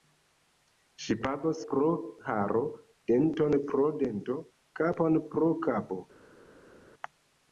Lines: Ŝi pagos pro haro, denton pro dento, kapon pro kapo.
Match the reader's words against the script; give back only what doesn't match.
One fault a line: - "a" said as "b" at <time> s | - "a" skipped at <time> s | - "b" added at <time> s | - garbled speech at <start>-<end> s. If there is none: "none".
none